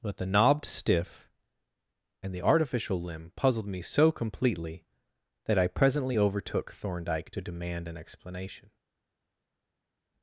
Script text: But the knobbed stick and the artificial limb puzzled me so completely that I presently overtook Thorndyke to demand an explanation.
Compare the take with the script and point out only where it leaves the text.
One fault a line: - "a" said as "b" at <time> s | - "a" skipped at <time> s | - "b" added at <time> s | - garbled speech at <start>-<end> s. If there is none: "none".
- "stick" said as "stiff" at 0.7 s